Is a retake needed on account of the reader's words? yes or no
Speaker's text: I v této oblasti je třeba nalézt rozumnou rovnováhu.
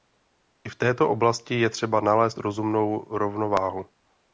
no